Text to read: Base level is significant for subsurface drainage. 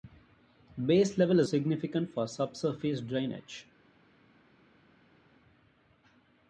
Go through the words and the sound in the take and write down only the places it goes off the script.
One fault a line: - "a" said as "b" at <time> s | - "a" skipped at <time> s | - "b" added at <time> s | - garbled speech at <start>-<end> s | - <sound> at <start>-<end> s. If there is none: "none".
none